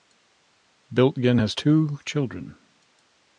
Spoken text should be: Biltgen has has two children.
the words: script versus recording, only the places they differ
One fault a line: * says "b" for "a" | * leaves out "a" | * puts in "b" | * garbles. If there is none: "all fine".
* leaves out "has"